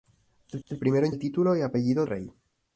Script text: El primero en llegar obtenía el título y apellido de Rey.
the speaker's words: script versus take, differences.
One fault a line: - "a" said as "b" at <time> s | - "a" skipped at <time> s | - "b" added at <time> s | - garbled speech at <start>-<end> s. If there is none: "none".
- "el" added at 0.7 s
- "llegar obtenía" skipped at 1.1 s
- "de" skipped at 2.0 s